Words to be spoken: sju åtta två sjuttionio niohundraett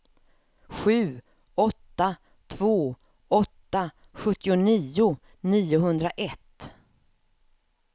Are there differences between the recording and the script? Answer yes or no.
yes